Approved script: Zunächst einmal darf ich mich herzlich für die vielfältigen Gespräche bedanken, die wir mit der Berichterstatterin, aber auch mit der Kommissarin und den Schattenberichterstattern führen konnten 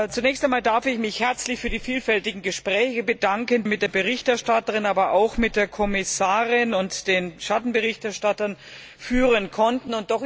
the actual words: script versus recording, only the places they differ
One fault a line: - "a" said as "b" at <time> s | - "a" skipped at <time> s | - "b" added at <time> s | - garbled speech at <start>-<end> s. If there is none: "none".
- "die wir" skipped at 3.6 s